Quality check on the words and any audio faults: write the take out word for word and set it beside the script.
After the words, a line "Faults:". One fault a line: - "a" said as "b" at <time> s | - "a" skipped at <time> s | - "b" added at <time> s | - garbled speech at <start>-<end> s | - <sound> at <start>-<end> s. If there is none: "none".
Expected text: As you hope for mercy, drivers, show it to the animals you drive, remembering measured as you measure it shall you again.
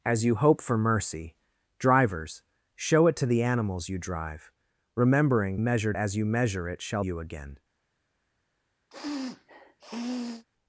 As you hope for mercy, drivers, show it to the animals you drive, remembering measured as you measure it shall you again.
Faults:
- sniff at 8.9-10.4 s